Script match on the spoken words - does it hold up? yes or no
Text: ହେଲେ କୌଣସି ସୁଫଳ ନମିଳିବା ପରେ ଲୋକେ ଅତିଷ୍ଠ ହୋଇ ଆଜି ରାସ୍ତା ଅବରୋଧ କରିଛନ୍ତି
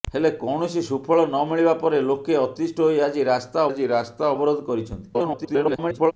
no